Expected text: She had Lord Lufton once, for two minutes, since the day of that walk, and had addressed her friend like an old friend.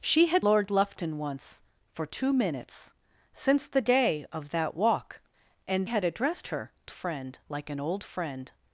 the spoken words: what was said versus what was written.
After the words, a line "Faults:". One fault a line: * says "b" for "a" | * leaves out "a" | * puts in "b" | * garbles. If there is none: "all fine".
She had Lord Lufton once, for two minutes, since the day of that walk, and had addressed her friend like an old friend.
Faults:
all fine